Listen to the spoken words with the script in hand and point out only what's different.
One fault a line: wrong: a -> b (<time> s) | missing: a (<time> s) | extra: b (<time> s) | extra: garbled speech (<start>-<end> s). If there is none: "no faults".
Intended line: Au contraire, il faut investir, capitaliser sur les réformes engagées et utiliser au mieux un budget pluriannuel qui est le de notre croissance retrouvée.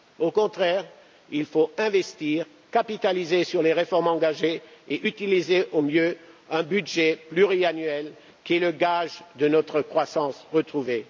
extra: gage (8.7 s)